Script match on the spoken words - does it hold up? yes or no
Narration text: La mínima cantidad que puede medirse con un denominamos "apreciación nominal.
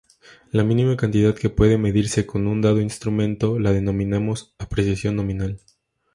no